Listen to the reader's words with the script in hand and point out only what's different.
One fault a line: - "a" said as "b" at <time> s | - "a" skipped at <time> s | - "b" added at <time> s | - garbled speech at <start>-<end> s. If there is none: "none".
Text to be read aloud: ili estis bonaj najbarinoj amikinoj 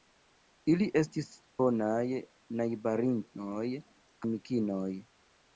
none